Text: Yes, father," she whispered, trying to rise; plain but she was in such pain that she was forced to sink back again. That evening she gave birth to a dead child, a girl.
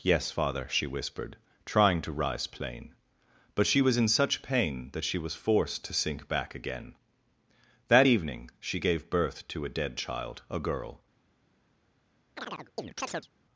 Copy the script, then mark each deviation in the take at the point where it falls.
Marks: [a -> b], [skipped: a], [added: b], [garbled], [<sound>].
Yes, father," she whispered, trying to rise; plain but she was in such pain that she was forced to sink back again. That evening she gave birth to a dead child, a girl. [chirp]